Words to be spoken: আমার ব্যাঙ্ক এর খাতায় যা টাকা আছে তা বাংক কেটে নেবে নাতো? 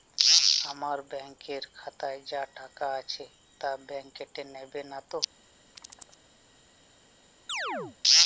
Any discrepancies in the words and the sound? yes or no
yes